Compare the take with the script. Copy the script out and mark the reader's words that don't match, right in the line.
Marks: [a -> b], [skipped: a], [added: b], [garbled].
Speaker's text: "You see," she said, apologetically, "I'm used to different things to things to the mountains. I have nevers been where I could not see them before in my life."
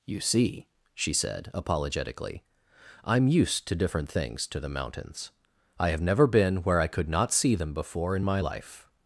"You see," she said, apologetically, "I'm used to different things to [skipped: things to] the mountains. I have [nevers -> never] been where I could not see them before in my life."